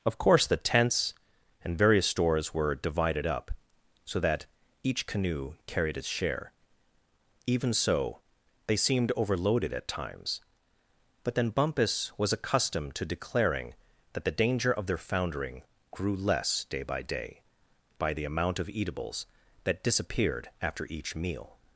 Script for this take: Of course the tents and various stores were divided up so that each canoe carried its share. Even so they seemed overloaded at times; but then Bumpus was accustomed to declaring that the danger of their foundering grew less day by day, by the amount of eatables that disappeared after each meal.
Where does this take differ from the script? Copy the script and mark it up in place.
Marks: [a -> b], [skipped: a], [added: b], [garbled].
Of course the tents and various stores were divided up so that each canoe carried its share. Even so they seemed overloaded at times; but then Bumpus was accustomed to declaring that the danger of their foundering grew less day by day, by the amount of eatables that disappeared after each meal.